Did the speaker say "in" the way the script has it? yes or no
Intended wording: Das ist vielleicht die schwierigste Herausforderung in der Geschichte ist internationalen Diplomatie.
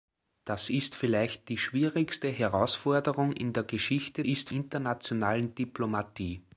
yes